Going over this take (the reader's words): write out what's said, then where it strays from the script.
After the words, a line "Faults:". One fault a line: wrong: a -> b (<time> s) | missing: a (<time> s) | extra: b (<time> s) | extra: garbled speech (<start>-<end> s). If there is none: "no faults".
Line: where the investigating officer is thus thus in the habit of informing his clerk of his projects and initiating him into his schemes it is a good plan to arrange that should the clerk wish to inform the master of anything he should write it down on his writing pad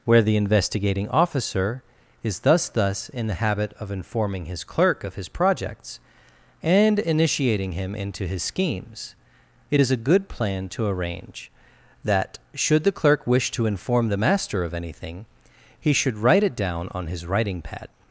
where the investigating officer is thus thus in the habit of informing his clerk of his projects and initiating him into his schemes it is a good plan to arrange that should the clerk wish to inform the master of anything he should write it down on his writing pad
Faults:
no faults